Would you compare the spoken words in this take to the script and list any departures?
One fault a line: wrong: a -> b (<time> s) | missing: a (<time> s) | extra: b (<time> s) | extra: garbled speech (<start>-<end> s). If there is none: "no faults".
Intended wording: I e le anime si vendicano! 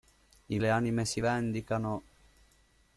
no faults